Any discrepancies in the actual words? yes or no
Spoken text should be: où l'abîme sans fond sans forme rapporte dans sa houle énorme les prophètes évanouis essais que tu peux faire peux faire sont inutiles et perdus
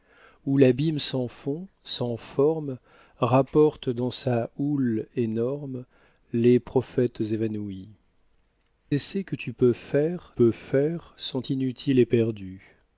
no